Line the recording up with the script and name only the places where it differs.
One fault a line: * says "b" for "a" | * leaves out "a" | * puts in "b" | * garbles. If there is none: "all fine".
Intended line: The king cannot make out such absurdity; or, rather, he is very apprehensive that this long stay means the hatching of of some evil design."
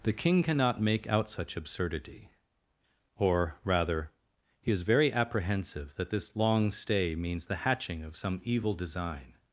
* leaves out "of"